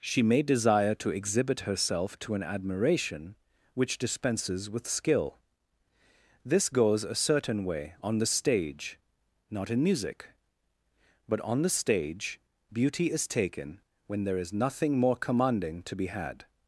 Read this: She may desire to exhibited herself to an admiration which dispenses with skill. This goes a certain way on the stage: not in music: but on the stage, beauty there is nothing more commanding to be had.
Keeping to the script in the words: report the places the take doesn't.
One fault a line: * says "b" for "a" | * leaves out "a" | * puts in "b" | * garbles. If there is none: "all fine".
* says "exhibit" for "exhibited"
* puts in "is taken when"